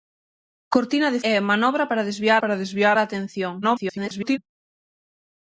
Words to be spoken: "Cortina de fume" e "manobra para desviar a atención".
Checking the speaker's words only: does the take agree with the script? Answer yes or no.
no